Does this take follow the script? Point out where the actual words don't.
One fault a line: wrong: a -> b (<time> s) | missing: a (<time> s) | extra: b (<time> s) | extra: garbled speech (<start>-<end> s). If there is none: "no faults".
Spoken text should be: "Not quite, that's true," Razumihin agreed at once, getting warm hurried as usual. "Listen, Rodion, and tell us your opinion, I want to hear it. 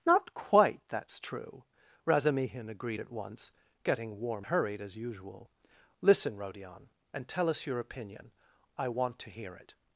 no faults